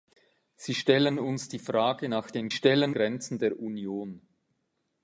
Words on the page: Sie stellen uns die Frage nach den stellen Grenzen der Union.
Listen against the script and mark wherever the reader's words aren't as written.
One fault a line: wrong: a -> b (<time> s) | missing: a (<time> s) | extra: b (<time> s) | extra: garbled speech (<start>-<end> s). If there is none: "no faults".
no faults